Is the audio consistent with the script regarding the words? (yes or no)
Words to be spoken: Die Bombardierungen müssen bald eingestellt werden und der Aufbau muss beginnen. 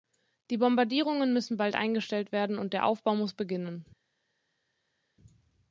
yes